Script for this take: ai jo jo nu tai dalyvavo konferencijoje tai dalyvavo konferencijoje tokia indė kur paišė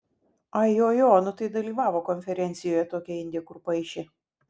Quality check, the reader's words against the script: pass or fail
fail